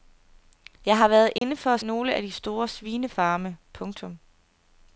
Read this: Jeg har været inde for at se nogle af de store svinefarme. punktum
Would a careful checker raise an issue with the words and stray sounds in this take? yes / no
yes